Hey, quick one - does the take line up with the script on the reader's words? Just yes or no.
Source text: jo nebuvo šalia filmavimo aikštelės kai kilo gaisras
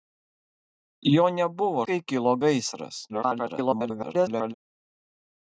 no